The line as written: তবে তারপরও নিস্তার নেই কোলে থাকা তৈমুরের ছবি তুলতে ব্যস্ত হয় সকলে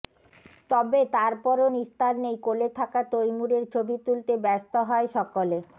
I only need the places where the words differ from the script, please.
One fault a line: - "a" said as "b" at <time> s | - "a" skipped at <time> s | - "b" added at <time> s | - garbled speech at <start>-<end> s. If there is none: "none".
none